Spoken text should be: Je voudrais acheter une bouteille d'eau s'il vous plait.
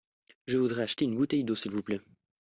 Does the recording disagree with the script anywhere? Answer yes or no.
no